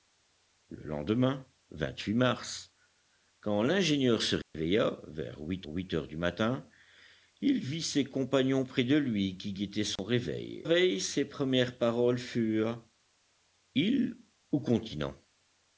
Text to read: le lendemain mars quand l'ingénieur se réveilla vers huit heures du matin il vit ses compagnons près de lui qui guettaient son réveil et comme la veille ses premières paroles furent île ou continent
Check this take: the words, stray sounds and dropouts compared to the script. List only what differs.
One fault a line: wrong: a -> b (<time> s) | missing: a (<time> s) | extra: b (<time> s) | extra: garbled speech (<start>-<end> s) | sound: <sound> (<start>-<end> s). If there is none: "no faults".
sound: dropout (4.4-4.5 s)
extra: huit (5.7 s)
sound: dropout (10.0-10.0 s)
missing: et comme la (10.6 s)